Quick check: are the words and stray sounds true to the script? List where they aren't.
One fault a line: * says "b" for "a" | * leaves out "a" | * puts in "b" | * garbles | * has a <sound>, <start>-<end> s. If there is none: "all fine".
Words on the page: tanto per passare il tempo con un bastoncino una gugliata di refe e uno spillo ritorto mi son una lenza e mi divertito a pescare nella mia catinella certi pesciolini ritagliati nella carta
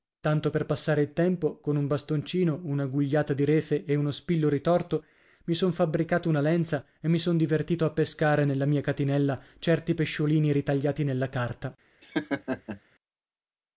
* puts in "fabbricato"
* puts in "son"
* has a laugh, 12.0-12.8 s